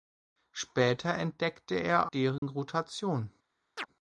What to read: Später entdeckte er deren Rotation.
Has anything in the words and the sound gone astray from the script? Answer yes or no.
yes